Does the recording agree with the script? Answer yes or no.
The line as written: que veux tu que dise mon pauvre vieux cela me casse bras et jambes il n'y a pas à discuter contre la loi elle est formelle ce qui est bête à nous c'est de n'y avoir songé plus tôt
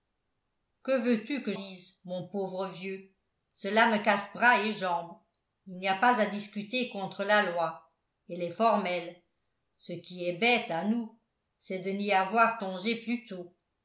yes